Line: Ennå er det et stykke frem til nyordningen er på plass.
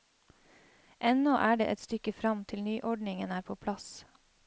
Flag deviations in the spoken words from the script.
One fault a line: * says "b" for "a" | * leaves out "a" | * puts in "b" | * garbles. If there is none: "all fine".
all fine